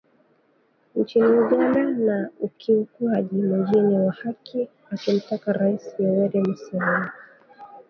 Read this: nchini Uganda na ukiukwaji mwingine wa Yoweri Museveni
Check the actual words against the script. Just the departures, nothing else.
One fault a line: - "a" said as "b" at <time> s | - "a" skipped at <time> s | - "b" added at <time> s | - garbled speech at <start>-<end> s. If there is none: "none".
- "haki akimtaka Rais" added at 4.1 s